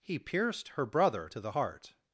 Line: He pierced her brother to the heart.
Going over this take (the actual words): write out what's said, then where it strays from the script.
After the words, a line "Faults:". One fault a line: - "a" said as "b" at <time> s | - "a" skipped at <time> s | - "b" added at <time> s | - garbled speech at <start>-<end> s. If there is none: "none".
He pierced her brother to the heart.
Faults:
none